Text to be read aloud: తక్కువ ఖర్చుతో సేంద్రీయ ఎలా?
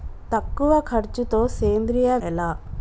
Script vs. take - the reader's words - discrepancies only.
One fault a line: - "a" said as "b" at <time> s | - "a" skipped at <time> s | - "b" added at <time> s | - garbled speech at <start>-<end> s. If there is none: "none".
none